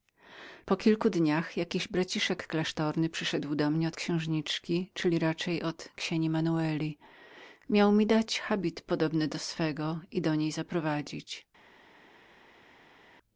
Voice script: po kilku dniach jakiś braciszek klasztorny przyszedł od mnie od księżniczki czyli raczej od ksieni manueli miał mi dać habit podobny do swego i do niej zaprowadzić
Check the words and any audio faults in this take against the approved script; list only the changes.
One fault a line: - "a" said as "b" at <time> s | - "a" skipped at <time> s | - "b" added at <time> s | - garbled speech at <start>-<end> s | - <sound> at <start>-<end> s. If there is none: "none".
- "od" said as "do" at 3.5 s